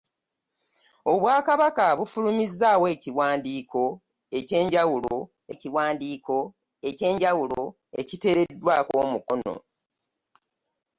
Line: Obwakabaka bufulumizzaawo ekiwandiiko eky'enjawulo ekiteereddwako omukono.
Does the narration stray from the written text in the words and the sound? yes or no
yes